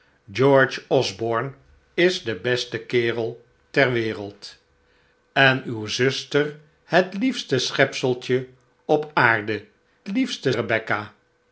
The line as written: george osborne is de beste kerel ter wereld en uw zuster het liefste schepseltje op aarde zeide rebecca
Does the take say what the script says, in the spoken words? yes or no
no